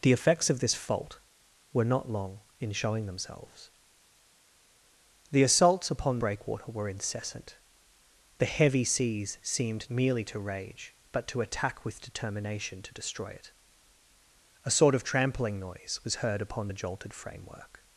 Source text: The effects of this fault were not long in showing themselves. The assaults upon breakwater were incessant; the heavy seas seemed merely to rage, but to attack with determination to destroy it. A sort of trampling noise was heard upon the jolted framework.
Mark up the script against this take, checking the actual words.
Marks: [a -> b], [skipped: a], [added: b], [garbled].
The effects of this fault were not long in showing themselves. The assaults upon breakwater were incessant; the heavy seas seemed merely to rage, but to attack with determination to destroy it. A sort of trampling noise was heard upon the jolted framework.